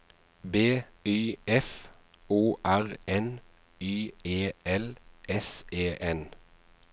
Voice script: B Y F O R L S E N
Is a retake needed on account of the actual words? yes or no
yes